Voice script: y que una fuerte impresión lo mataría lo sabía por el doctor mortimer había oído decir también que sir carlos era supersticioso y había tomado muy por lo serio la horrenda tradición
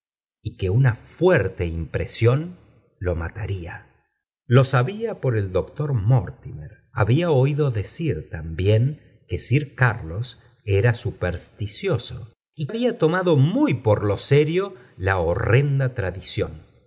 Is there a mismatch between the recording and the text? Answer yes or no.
no